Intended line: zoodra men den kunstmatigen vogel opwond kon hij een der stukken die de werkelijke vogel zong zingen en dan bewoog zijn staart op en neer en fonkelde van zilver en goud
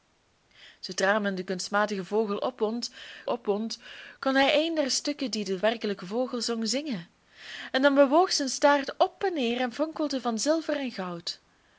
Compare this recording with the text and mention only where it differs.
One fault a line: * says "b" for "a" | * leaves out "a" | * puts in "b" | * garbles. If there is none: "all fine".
* puts in "opwond"